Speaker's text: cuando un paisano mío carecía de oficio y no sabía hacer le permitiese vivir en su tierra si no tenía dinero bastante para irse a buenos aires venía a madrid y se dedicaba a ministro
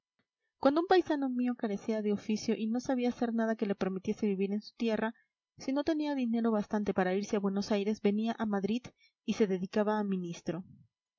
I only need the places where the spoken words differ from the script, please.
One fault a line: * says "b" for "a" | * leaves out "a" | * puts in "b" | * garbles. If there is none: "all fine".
* puts in "nada que"